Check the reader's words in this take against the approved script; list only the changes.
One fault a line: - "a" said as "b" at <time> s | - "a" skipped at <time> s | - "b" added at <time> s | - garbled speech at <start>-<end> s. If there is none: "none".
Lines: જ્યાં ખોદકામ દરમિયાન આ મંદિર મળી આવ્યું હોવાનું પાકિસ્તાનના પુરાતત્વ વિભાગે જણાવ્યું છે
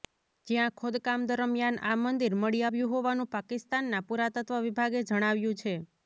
none